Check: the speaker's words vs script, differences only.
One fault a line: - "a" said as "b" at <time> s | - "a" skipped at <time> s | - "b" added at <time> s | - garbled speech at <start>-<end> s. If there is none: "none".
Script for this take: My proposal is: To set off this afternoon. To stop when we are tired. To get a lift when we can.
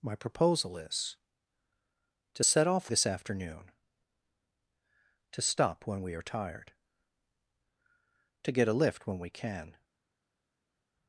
none